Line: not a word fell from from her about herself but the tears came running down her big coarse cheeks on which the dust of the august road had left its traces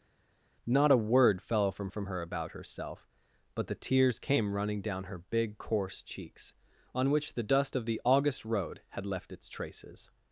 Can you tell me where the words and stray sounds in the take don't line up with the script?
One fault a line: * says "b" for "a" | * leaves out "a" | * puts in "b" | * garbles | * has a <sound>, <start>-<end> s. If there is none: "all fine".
all fine